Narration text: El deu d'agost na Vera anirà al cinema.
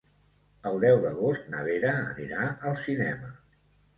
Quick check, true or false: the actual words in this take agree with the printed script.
true